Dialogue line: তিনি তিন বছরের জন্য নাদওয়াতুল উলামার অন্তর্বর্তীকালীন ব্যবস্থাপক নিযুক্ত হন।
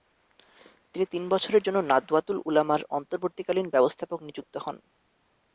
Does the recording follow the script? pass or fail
pass